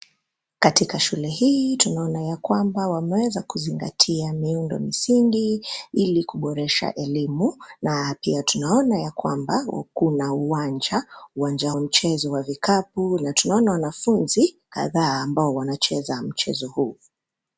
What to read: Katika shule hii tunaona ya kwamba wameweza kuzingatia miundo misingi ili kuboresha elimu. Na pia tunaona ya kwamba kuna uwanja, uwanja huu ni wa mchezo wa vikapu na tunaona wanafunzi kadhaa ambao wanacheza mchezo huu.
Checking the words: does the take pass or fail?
fail